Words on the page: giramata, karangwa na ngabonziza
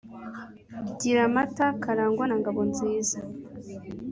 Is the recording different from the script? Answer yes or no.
no